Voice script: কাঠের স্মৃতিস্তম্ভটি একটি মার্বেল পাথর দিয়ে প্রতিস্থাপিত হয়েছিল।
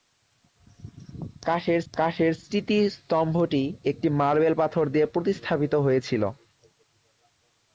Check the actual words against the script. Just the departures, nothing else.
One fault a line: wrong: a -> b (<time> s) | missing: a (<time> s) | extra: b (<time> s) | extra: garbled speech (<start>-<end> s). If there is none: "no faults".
extra: কাঠের (1.9 s)